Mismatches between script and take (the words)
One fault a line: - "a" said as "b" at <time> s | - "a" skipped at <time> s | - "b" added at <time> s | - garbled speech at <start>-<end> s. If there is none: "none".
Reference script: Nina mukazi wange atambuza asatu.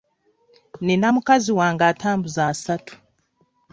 none